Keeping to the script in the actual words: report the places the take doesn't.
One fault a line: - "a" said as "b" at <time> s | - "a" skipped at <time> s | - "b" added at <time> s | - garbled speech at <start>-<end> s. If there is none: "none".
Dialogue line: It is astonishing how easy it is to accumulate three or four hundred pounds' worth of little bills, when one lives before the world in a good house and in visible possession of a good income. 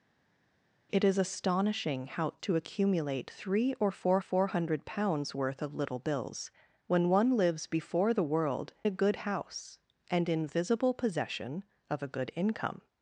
- "easy it is" skipped at 2.3 s
- "four" added at 4.2 s
- "in" skipped at 8.7 s